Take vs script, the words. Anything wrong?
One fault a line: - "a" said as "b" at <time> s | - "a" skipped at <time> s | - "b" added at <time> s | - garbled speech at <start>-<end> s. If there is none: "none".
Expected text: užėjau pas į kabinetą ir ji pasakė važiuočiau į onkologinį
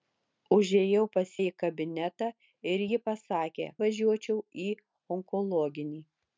none